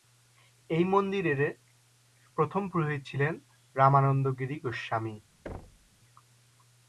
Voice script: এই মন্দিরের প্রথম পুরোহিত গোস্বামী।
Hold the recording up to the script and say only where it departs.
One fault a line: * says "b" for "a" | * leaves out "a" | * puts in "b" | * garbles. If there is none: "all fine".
* puts in "ছিলেন রামানন্দ গিরি"